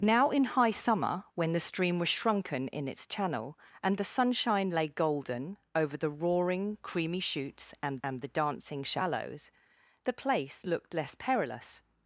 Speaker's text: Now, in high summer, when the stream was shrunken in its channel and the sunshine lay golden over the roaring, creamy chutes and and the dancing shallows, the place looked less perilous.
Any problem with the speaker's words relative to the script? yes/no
no